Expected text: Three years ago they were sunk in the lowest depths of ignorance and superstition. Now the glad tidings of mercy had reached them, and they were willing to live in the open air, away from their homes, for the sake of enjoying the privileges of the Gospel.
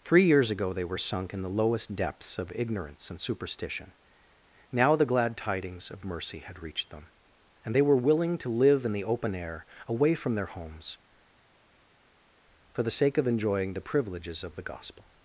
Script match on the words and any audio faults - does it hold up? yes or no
yes